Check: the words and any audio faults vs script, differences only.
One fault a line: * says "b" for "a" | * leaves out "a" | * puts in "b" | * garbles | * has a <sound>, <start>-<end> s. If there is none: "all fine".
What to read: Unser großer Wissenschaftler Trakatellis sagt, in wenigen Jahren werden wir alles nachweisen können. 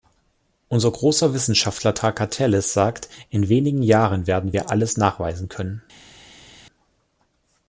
all fine